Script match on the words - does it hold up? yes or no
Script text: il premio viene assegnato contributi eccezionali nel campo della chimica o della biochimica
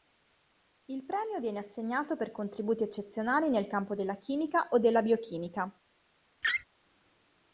no